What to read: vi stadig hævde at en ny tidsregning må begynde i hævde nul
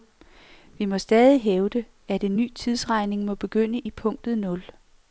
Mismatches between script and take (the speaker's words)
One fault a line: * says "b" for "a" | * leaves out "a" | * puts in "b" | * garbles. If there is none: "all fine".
* puts in "må"
* says "punktet" for "hævde"